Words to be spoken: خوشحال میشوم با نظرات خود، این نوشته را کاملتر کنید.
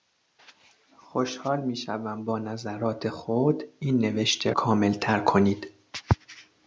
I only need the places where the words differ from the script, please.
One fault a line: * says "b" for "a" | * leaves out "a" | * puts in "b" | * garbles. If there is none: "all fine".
* leaves out "را"